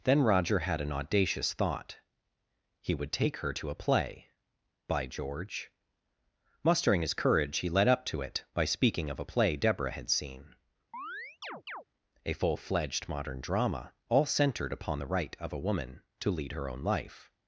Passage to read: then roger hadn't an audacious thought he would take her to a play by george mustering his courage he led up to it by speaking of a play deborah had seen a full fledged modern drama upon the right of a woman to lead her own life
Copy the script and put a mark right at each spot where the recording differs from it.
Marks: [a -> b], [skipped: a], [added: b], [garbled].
then roger [hadn't -> had] an audacious thought he would take her to a play by george mustering his courage he led up to it by speaking of a play deborah had seen a full fledged modern drama [added: all centered] upon the right of a woman to lead her own life